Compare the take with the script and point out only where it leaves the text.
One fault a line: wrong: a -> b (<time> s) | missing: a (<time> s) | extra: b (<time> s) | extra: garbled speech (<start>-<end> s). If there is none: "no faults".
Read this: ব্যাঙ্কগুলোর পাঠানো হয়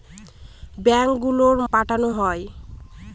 no faults